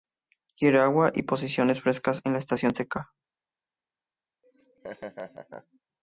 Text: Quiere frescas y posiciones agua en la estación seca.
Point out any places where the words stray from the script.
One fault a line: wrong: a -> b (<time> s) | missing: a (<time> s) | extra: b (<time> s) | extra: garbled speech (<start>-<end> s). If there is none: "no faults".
wrong: frescas -> agua (0.8 s)
wrong: agua -> frescas (1.8 s)